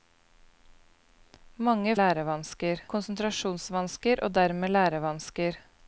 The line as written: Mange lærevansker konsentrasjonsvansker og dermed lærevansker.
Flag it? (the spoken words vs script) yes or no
no